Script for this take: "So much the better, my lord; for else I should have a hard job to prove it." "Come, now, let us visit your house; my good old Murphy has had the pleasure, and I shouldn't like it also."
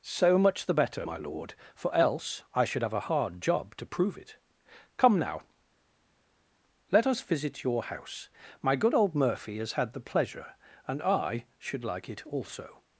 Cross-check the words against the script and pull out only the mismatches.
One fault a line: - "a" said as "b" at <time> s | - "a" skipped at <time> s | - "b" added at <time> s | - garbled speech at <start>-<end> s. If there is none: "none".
- "shouldn't" said as "should" at 11.6 s